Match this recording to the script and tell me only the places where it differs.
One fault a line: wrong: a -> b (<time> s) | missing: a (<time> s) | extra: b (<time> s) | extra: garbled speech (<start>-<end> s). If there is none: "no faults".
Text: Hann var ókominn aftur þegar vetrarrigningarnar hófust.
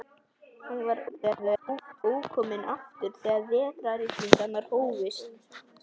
extra: garbled speech (1.1-2.0 s)